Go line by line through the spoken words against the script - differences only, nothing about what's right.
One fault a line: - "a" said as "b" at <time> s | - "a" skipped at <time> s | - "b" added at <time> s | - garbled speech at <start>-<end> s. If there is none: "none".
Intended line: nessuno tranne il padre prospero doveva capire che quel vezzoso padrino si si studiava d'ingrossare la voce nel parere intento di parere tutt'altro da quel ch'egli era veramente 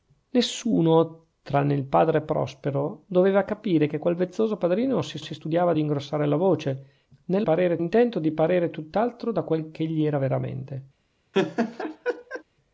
none